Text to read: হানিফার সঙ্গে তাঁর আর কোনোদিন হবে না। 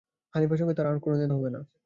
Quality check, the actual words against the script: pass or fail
pass